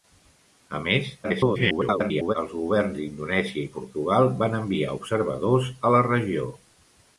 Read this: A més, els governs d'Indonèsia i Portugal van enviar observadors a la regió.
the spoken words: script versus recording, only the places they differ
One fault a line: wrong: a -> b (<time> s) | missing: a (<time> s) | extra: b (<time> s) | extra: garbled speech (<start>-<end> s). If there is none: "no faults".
extra: garbled speech (1.2-2.4 s)